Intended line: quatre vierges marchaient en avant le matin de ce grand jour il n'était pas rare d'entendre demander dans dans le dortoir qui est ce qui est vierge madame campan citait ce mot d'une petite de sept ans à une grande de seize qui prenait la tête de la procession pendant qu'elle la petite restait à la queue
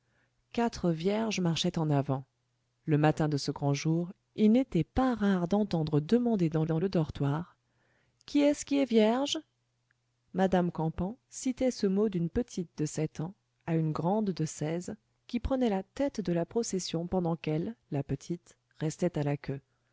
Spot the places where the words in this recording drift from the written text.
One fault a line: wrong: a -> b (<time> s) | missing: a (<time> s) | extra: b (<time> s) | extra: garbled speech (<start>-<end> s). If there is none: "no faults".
no faults